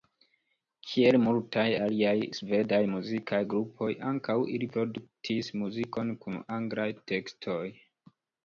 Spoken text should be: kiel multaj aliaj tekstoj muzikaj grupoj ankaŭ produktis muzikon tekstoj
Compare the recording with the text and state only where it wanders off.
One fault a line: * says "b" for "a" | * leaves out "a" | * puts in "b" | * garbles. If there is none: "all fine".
* says "svedaj" for "tekstoj"
* puts in "ili"
* puts in "kun anglaj"